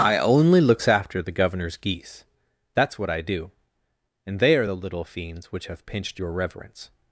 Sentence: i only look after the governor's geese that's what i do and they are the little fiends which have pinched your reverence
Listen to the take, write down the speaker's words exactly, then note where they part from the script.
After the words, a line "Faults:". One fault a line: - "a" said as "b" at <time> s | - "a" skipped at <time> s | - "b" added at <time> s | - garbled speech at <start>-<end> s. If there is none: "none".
i only looks after the governor's geese that's what i do and they are the little fiends which have pinched your reverence
Faults:
- "look" said as "looks" at 0.6 s